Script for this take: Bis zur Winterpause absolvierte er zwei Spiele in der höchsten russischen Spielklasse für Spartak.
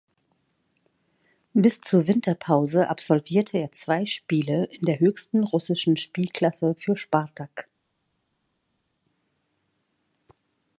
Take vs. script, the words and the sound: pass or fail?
pass